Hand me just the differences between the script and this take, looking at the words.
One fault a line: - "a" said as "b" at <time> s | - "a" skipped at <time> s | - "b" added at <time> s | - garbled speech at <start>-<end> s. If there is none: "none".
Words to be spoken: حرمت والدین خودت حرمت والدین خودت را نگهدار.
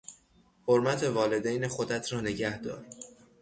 - "حرمت والدین خودت" skipped at 2.1 s